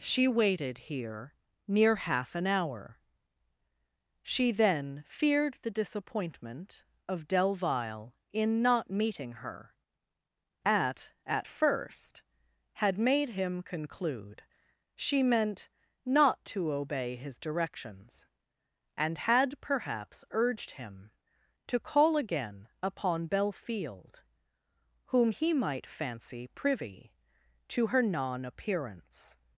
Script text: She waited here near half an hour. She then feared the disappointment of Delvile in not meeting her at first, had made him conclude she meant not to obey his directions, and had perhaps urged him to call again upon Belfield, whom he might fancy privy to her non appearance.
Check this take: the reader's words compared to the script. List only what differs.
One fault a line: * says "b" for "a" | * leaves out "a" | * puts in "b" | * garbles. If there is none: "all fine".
* puts in "at"